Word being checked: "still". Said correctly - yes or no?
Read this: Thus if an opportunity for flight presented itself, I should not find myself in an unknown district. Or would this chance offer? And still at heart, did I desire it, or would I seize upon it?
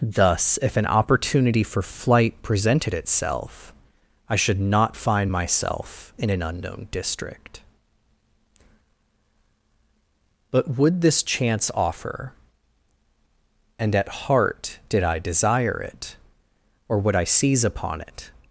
no